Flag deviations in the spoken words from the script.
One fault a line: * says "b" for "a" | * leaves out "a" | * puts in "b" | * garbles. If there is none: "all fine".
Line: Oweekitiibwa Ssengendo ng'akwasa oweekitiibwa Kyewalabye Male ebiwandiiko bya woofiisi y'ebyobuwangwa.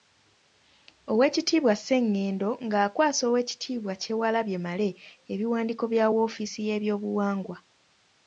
all fine